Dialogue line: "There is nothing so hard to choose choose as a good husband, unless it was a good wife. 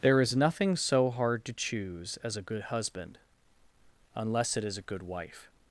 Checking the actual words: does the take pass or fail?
fail